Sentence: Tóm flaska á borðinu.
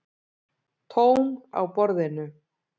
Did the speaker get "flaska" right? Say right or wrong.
wrong